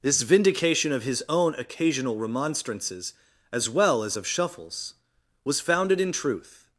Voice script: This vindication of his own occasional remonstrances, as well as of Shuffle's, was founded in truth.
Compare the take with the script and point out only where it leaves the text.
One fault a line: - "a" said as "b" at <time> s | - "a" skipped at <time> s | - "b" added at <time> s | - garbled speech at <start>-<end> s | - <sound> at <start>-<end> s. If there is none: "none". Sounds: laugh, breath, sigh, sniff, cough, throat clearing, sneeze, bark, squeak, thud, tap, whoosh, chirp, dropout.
none